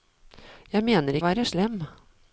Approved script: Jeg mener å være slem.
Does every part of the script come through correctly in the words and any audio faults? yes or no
yes